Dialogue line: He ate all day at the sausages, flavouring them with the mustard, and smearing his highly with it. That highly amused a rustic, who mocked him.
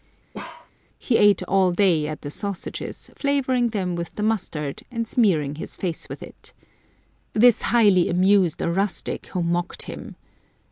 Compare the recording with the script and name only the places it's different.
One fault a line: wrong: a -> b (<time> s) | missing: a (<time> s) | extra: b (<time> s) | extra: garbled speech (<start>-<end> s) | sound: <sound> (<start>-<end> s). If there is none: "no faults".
sound: bark (0.3-0.7 s)
wrong: highly -> face (5.8 s)
wrong: That -> This (7.3 s)